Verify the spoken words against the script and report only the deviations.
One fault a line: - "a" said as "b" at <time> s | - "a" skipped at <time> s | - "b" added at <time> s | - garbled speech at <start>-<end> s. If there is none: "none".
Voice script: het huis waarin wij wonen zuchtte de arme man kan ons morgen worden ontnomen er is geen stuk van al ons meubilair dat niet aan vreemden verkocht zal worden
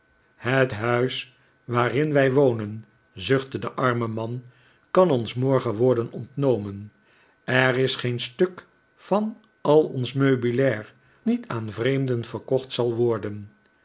- "dat" skipped at 10.9 s